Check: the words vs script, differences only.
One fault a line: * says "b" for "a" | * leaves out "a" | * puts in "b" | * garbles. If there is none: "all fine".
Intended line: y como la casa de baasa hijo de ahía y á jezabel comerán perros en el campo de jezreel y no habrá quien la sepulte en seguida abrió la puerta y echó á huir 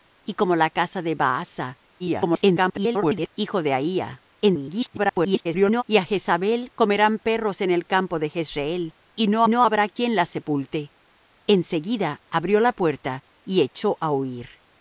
* garbles
* garbles
* puts in "no"